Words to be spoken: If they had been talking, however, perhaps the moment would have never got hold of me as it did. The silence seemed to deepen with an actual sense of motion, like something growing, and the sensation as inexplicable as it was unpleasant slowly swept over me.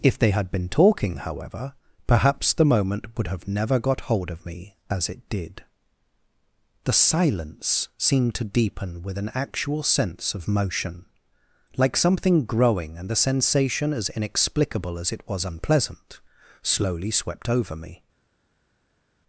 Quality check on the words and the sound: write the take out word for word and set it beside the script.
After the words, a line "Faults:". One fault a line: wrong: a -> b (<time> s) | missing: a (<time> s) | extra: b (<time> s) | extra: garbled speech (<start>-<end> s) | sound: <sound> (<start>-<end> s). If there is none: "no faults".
If they had been talking, however, perhaps the moment would have never got hold of me as it did. The silence seemed to deepen with an actual sense of motion, like something growing, and the sensation as inexplicable as it was unpleasant slowly swept over me.
Faults:
no faults